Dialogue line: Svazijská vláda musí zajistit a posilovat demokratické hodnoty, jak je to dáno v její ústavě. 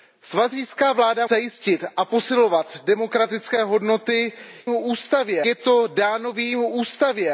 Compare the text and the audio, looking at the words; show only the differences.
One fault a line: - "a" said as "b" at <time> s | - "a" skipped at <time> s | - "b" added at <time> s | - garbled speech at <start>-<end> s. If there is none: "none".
- "musí" skipped at 1.3 s
- "jak" said as "ústavě" at 4.7 s